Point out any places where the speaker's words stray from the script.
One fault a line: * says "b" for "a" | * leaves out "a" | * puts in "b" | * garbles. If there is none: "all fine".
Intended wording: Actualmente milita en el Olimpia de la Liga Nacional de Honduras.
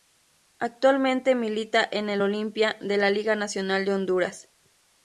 all fine